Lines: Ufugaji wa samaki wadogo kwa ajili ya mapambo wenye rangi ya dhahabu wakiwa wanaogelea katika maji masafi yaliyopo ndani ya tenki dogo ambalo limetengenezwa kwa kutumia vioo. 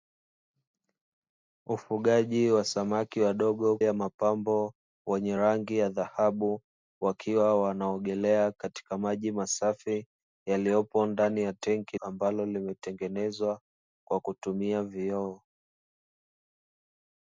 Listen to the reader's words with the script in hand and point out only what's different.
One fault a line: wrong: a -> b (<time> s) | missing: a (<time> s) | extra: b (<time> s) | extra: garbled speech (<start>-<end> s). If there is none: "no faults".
missing: kwa ajili (3.8 s)
missing: dogo (12.0 s)